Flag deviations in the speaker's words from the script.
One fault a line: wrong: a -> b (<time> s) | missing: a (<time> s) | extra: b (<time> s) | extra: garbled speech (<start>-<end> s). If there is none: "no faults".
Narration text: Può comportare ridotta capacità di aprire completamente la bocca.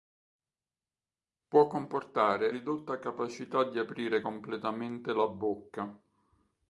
no faults